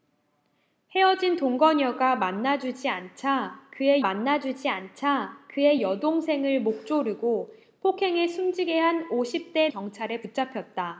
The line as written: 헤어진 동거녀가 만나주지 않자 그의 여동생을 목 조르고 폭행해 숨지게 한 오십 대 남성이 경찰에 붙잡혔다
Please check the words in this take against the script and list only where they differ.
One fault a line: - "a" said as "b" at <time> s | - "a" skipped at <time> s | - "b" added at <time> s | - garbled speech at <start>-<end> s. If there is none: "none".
- "만나주지 않자 그의" added at 4.0 s
- "남성이" skipped at 9.7 s